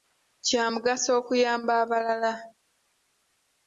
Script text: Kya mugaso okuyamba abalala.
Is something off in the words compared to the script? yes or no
no